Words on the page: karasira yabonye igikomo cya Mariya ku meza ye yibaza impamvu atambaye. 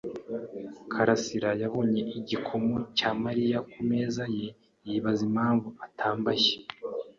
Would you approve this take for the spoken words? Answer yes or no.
yes